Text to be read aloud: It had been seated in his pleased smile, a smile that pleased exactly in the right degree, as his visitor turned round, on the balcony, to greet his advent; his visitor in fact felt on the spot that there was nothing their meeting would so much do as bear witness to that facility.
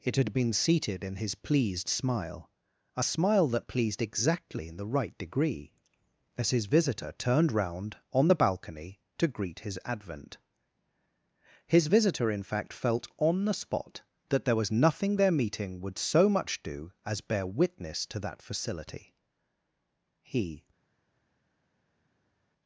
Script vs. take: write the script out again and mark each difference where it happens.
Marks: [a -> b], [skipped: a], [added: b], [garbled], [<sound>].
It had been seated in his pleased smile, a smile that pleased exactly in the right degree, as his visitor turned round, on the balcony, to greet his advent; his visitor in fact felt on the spot that there was nothing their meeting would so much do as bear witness to that facility. [added: He]